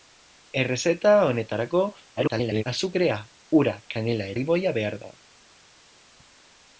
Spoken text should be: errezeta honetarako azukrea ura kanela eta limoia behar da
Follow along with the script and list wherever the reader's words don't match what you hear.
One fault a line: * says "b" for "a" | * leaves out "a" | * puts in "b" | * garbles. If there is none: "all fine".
* garbles
* leaves out "eta"